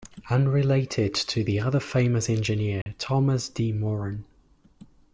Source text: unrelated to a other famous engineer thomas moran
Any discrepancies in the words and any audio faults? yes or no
yes